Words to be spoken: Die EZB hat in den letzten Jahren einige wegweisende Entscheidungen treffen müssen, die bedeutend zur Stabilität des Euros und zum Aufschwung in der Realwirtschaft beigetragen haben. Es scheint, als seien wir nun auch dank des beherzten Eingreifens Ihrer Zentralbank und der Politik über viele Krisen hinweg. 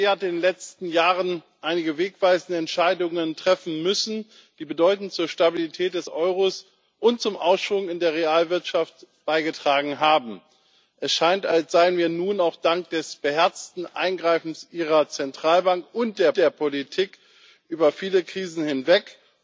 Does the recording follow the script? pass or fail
fail